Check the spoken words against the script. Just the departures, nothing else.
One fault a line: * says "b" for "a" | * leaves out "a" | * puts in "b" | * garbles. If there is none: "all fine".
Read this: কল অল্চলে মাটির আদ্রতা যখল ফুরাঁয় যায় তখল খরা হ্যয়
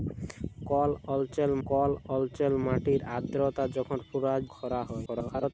* puts in "কল অল্চলে"
* leaves out "যায় তখল"
* garbles